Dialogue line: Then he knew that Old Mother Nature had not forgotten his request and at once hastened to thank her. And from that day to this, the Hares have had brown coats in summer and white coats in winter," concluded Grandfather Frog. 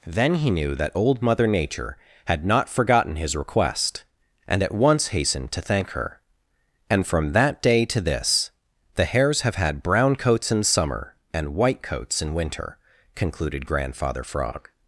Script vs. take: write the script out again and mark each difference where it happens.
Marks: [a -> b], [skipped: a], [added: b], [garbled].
Then he knew that Old Mother Nature had not forgotten his request and at once hastened to thank her. And from that day to this, the Hares have had brown coats in summer and white coats in winter," concluded Grandfather Frog.